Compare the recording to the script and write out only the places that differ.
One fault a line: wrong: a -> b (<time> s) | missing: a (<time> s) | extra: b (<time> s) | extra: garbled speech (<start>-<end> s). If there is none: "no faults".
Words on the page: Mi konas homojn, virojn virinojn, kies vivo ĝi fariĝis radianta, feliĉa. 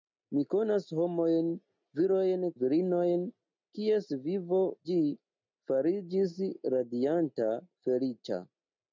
no faults